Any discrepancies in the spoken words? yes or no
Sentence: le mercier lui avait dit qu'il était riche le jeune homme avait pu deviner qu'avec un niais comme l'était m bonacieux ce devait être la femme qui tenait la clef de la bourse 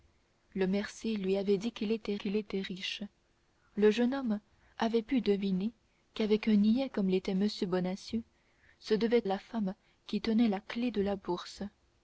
yes